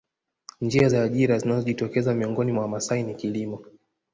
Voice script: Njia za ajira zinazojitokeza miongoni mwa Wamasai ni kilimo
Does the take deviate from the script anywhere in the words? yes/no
no